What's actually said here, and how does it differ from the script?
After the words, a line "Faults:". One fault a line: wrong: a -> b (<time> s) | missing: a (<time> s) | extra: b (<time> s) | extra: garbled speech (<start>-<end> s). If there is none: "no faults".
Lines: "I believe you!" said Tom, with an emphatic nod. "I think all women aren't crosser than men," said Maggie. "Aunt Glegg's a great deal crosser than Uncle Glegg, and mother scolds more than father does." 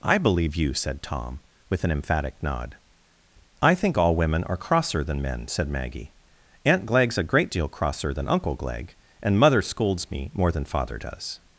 "I believe you!" said Tom, with an emphatic nod. "I think all women are crosser than men," said Maggie. "Aunt Glegg's a great deal crosser than Uncle Glegg, and mother scolds me more than father does."
Faults:
wrong: aren't -> are (4.4 s)
extra: me (10.1 s)